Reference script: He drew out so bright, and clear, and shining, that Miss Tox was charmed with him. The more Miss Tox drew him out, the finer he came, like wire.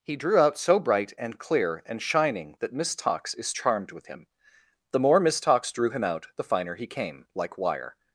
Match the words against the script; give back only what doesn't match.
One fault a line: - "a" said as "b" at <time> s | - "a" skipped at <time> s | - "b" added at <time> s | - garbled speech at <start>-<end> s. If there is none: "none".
- "was" said as "is" at 3.3 s